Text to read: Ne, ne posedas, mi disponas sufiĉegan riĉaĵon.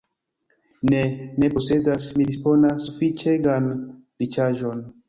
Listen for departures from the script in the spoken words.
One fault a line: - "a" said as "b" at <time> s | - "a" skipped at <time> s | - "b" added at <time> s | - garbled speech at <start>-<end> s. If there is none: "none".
none